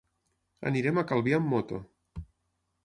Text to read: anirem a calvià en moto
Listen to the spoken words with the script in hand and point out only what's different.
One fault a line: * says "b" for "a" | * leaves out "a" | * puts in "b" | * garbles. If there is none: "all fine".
* says "amb" for "en"